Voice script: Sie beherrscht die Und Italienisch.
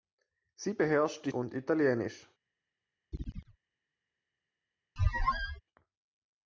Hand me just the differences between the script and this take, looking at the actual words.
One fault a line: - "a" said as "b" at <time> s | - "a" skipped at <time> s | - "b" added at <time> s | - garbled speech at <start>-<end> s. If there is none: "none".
none